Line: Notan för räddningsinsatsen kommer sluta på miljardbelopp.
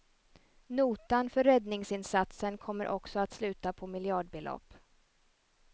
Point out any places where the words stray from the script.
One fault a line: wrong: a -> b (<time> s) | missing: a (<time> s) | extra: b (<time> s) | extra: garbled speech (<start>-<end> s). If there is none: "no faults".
extra: också att (2.9 s)